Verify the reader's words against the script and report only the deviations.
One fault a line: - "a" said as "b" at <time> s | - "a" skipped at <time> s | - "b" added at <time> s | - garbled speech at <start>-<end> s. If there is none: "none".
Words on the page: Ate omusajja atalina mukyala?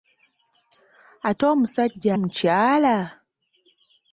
- "atalina" skipped at 2.1 s